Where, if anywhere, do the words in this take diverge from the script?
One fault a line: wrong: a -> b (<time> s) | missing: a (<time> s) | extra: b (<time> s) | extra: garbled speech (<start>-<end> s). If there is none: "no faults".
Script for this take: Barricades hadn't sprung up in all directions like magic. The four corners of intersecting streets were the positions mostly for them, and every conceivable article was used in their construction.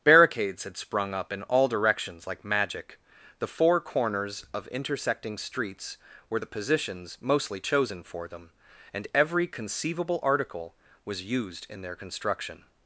wrong: hadn't -> had (0.6 s)
extra: chosen (7.6 s)